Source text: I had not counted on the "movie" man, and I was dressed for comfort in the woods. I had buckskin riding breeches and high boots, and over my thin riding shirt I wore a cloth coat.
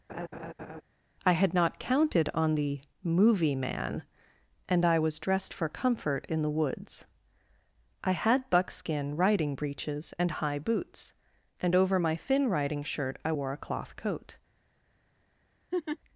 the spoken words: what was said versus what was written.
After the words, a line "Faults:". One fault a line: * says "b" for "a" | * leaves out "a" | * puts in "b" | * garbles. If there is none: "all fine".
I had not counted on the "movie" man, and I was dressed for comfort in the woods. I had buckskin riding breeches and high boots, and over my thin riding shirt I wore a cloth coat.
Faults:
all fine